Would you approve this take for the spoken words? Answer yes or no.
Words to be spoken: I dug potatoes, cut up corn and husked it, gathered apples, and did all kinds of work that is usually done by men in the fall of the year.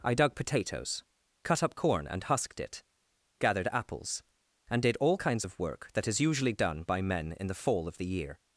yes